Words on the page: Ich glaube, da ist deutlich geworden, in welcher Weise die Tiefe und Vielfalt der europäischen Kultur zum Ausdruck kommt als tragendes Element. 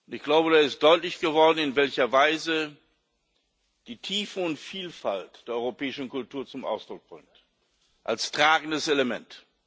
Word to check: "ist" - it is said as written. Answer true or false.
true